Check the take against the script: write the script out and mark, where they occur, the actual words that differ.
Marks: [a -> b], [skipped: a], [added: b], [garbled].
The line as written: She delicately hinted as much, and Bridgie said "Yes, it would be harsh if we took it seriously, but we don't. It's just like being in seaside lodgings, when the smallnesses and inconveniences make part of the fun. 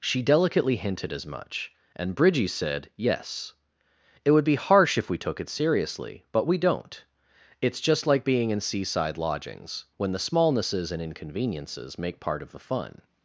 She delicately hinted as much, and Bridgie said "Yes, it would be harsh if we took it seriously, but we don't. It's just like being in seaside lodgings, when the smallnesses and inconveniences make part of the fun.